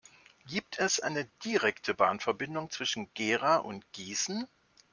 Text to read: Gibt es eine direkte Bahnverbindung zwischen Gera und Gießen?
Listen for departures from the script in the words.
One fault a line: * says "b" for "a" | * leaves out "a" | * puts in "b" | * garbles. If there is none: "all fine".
all fine